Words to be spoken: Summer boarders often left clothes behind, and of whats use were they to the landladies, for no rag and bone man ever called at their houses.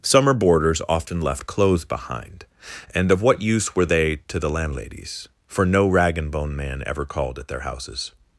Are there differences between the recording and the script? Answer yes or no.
yes